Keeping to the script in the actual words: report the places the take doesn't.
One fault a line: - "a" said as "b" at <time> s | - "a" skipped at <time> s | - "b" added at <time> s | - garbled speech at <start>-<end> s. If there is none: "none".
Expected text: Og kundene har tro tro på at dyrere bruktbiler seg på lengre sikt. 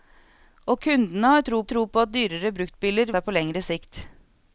none